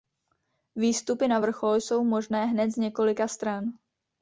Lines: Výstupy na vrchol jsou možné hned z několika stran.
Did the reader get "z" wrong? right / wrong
right